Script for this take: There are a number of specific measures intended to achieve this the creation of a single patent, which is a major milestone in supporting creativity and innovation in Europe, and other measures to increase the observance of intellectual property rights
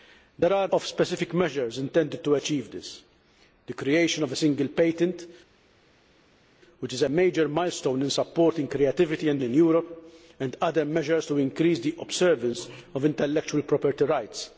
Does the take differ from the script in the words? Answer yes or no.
yes